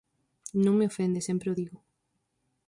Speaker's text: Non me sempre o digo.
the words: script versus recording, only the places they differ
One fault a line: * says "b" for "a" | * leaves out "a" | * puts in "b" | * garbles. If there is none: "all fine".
* puts in "ofende"